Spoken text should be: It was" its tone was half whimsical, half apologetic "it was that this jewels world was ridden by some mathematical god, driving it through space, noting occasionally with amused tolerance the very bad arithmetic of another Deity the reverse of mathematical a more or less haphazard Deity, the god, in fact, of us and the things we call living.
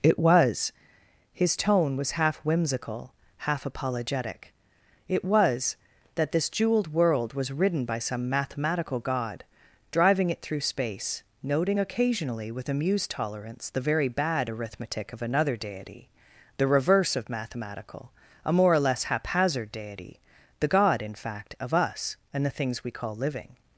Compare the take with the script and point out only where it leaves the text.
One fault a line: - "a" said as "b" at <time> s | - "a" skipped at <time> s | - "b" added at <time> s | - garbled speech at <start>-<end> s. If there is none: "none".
- "its" said as "his" at 1.3 s
- "jewels" said as "jeweled" at 6.5 s